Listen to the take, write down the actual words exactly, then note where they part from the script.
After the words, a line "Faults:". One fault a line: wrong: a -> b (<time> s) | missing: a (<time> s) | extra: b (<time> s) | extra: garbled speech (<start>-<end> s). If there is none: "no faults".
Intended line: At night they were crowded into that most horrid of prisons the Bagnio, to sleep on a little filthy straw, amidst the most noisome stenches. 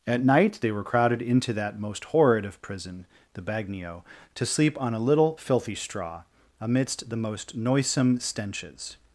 At night they were crowded into that most horrid of prison the Bagnio, to sleep on a little filthy straw, amidst the most noisome stenches.
Faults:
wrong: prisons -> prison (2.6 s)